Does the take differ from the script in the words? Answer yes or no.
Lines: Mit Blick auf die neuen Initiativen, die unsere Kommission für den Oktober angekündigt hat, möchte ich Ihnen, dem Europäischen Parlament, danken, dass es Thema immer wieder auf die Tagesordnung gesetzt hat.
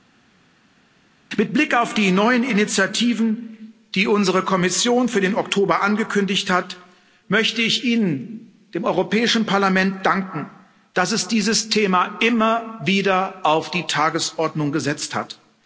yes